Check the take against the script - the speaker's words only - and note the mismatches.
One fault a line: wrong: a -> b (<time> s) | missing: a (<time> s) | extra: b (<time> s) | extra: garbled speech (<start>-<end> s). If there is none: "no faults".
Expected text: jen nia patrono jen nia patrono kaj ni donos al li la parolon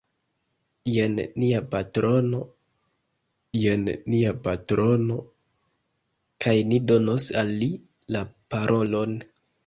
no faults